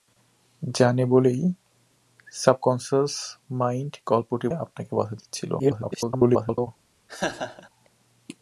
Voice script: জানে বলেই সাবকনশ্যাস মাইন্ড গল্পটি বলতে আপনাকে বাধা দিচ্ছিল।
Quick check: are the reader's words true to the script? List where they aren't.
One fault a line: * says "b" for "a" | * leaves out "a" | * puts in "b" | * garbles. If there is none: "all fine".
* leaves out "বলতে"
* garbles